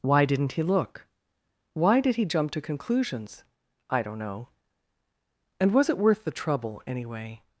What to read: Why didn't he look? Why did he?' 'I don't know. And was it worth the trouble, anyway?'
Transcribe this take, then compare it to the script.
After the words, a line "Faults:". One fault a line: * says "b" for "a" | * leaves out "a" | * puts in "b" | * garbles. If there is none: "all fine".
Why didn't he look? Why did he jump to conclusions?' 'I don't know. And was it worth the trouble, anyway?'
Faults:
* puts in "jump to conclusions"